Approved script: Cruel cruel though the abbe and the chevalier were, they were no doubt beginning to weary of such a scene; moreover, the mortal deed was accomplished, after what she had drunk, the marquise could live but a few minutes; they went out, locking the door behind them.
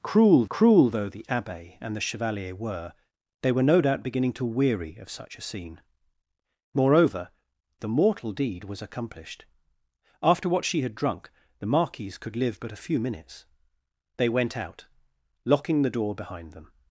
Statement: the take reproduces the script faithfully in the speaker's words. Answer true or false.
true